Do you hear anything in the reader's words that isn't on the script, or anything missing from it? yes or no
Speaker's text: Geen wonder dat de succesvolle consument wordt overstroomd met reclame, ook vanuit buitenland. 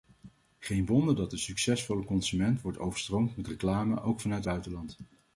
no